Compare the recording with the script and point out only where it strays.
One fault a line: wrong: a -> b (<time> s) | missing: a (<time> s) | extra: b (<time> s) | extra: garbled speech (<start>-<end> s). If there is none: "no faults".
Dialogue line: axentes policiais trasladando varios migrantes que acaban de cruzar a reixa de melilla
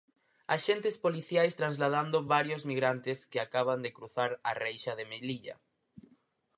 no faults